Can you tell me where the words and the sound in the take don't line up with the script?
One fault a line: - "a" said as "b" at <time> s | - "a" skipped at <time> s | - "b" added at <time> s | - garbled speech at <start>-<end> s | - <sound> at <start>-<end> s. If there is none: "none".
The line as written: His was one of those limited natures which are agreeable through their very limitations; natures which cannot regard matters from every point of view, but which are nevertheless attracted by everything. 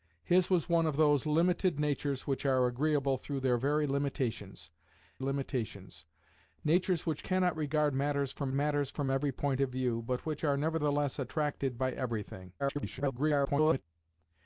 - "limitations" added at 5.2 s
- "matters from" added at 8.5 s
- garbled speech at 12.6-13.8 s